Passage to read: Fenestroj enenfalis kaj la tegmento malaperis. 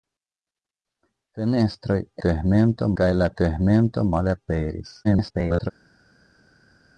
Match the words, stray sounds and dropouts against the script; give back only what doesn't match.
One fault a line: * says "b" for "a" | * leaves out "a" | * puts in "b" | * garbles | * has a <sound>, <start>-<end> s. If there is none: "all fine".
* says "tegmento" for "enenfalis"
* garbles